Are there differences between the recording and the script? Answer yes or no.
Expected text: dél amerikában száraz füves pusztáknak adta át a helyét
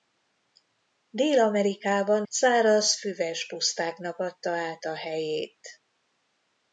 no